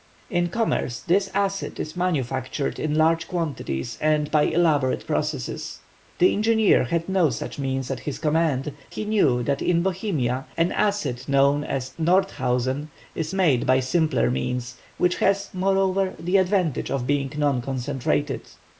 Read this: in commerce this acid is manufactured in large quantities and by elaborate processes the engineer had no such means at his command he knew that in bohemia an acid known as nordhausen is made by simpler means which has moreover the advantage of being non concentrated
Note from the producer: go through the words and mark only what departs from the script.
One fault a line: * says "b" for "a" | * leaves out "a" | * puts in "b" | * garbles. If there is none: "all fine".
all fine